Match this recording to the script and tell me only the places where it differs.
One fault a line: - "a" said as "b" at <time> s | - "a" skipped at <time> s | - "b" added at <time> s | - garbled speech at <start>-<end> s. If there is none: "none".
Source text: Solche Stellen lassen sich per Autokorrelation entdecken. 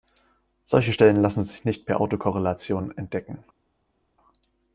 - "nicht" added at 1.6 s